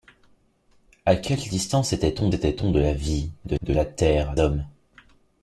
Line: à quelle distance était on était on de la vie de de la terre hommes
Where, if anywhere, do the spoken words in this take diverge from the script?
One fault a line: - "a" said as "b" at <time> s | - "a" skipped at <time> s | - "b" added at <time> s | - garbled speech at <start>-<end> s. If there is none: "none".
none